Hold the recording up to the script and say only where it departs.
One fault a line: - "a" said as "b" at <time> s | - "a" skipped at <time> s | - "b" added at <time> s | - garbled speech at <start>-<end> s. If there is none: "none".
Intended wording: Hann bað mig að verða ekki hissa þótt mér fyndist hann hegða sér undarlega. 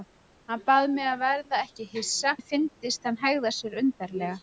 - "þótt" skipped at 2.3 s